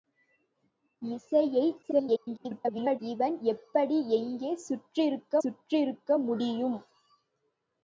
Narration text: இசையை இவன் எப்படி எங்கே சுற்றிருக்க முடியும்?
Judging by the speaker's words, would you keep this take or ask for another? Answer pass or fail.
fail